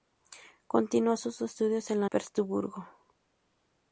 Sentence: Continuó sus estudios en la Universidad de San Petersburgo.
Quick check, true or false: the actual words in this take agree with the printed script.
false